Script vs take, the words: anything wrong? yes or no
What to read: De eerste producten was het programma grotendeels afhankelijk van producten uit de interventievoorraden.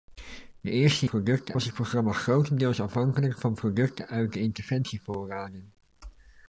no